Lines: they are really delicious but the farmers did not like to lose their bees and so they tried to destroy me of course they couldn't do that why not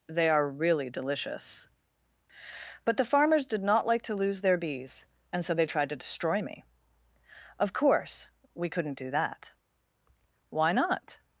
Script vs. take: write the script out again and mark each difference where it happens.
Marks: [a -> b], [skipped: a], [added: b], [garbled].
they are really delicious but the farmers did not like to lose their bees and so they tried to destroy me of course [they -> we] couldn't do that why not